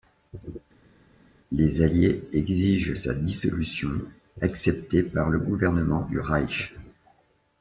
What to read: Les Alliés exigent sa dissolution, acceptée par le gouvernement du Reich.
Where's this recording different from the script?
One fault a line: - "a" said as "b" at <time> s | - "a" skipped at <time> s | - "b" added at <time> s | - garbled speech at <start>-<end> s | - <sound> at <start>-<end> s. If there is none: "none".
none